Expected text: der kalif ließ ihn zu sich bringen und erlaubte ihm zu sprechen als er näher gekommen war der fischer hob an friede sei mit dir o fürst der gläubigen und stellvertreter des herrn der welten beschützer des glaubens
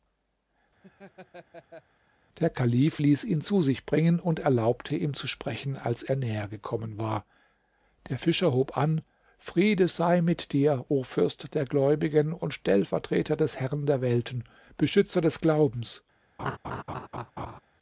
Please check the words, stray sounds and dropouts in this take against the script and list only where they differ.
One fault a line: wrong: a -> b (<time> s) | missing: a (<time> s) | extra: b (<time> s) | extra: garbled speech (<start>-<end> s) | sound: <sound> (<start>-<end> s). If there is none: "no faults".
sound: laugh (0.8-1.8 s)
sound: laugh (16.4-17.6 s)